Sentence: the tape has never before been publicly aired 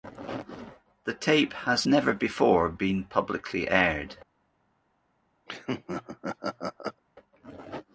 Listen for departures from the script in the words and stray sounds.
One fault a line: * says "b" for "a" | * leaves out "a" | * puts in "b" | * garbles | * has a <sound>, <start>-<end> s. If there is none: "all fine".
* has a laugh, 5.5-7.0 s